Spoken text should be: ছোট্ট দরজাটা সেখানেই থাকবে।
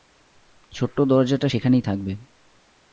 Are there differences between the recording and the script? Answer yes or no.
no